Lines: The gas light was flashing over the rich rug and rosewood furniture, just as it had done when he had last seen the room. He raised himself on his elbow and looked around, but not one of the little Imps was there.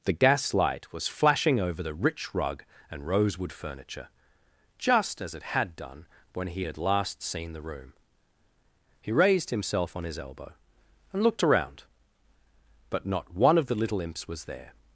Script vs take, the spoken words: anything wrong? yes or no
no